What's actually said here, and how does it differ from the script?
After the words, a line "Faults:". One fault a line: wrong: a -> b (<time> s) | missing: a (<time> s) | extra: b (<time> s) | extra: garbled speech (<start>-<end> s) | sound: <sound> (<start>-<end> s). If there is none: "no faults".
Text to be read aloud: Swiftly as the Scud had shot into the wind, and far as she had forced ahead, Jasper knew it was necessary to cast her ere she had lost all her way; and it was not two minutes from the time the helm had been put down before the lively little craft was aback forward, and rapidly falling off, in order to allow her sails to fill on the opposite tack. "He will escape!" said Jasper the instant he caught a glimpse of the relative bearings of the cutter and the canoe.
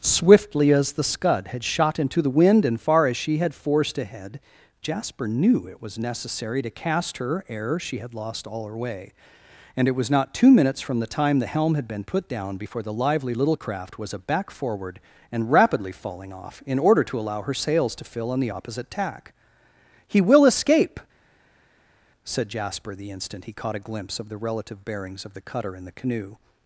Swiftly as the Scud had shot into the wind, and far as she had forced ahead, Jasper knew it was necessary to cast her ere she had lost all her way; and it was not two minutes from the time the helm had been put down before the lively little craft was aback forward, and rapidly falling off, in order to allow her sails to fill on the opposite tack. "He will escape!" said Jasper the instant he caught a glimpse of the relative bearings of the cutter and the canoe.
Faults:
no faults